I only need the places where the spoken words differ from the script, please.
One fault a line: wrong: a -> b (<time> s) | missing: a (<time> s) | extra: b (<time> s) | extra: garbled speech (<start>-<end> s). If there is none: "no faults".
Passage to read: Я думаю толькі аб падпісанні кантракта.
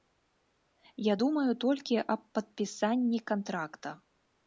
no faults